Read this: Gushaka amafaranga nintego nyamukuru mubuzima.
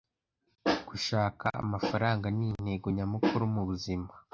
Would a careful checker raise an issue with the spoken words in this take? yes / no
no